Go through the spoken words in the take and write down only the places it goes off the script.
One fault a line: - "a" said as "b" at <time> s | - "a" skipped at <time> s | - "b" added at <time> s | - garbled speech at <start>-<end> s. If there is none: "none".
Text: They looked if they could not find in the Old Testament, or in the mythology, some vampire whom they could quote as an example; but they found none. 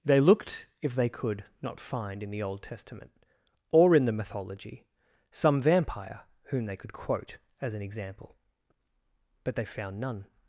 none